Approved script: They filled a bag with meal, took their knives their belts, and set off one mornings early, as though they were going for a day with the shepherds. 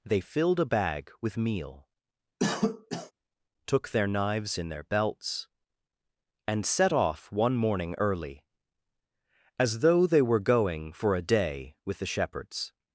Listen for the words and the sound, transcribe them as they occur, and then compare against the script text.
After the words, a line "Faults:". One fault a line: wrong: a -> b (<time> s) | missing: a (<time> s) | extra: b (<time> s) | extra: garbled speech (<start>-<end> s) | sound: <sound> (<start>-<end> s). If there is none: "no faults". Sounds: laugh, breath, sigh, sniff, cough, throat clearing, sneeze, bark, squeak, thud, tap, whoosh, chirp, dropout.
They filled a bag with meal, took their knives in their belts, and set off one morning early, as though they were going for a day with the shepherds.
Faults:
sound: cough (2.4-3.1 s)
extra: in (4.6 s)
wrong: mornings -> morning (7.6 s)